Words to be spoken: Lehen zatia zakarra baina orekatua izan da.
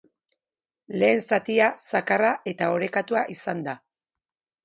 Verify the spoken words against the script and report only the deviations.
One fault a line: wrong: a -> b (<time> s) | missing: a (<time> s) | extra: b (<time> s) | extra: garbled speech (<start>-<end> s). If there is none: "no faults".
wrong: baina -> eta (2.5 s)